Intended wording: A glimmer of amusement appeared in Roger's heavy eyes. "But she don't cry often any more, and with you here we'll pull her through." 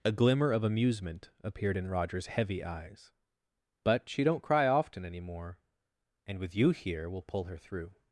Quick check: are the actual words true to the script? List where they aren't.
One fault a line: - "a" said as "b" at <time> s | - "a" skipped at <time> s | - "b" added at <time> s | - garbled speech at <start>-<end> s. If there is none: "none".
none